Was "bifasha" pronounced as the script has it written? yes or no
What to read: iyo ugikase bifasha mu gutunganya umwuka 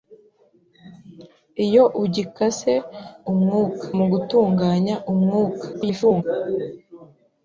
no